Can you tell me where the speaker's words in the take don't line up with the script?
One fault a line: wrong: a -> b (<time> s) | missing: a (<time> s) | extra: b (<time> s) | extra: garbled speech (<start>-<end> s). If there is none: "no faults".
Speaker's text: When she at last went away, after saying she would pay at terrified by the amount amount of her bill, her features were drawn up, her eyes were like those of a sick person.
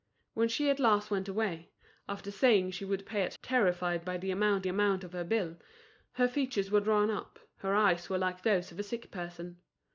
no faults